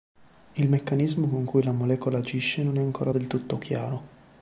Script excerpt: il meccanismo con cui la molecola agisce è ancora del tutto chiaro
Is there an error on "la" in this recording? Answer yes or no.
no